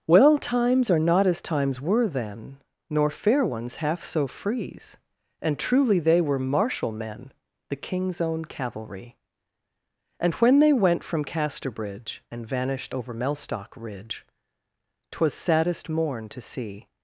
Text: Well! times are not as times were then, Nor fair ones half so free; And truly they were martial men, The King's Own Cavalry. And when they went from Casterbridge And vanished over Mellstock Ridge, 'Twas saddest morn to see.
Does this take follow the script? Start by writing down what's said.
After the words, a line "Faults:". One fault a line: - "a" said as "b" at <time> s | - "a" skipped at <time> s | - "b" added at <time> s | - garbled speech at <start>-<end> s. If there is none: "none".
Well! times are not as times were then, Nor fair ones half so frees; And truly they were martial men, The King's Own Cavalry. And when they went from Casterbridge And vanished over Mellstock Ridge, 'Twas saddest morn to see.
Faults:
- "free" said as "frees" at 4.3 s